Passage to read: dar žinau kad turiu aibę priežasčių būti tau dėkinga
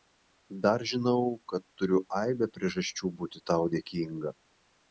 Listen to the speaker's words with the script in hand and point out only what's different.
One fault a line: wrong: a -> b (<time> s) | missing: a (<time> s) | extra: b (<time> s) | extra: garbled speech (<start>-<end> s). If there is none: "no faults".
no faults